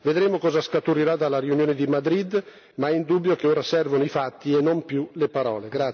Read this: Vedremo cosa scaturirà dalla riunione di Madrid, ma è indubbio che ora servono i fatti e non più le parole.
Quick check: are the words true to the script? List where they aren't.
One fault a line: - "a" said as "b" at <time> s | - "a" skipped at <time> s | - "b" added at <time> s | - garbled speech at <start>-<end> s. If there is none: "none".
none